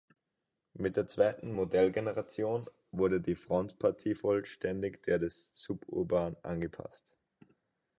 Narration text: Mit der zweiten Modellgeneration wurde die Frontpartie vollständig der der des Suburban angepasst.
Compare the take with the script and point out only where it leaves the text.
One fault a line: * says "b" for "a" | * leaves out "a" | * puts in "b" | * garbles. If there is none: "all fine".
* leaves out "der"